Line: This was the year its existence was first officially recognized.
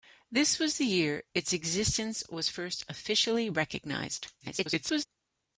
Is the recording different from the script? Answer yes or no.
yes